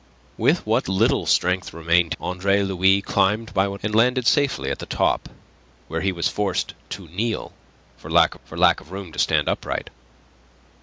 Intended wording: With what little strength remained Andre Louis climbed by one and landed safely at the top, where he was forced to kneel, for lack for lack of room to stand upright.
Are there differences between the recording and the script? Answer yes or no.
no